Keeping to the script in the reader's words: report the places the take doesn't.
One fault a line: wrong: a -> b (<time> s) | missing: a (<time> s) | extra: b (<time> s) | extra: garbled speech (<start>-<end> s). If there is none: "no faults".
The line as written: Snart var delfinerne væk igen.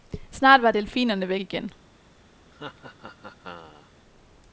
no faults